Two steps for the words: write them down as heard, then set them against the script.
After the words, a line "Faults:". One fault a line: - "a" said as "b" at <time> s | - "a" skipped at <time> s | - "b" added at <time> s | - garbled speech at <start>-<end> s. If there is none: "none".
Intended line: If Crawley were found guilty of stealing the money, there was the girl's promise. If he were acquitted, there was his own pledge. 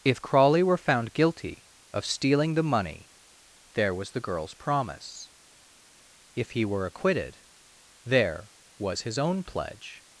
If Crawley were found guilty of stealing the money, there was the girl's promise. If he were acquitted, there was his own pledge.
Faults:
none